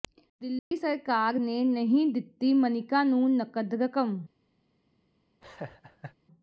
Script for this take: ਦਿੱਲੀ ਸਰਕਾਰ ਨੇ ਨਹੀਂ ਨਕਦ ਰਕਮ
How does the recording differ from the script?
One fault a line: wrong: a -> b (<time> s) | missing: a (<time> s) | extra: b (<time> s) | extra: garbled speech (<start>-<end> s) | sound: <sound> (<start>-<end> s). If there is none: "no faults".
sound: dropout (0.6-0.7 s)
extra: ਦਿੱਤੀ ਮਨਿਕਾ ਨੂੰ (2.1 s)
sound: laugh (5.4-6.2 s)